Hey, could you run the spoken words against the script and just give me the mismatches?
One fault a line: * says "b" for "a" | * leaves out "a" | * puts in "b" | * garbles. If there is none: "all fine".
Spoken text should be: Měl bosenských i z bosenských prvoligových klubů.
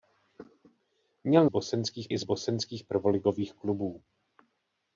all fine